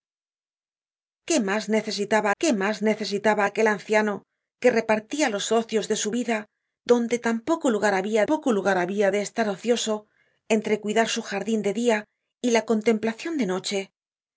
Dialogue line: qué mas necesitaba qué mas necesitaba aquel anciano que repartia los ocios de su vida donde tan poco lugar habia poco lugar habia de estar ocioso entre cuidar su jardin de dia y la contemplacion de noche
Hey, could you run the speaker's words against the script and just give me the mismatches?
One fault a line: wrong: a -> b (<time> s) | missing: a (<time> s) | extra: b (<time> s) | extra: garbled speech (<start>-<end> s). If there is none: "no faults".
no faults